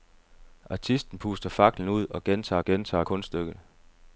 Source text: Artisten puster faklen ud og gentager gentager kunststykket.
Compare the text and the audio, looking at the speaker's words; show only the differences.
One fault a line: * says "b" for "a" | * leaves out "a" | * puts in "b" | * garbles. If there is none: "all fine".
all fine